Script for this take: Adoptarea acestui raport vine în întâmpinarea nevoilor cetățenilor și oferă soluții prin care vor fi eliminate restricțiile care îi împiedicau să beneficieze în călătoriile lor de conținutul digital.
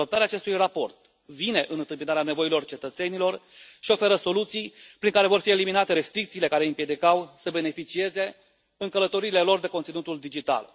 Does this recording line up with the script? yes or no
yes